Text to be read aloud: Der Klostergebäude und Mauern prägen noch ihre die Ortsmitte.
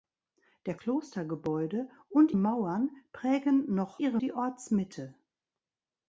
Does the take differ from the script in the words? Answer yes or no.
no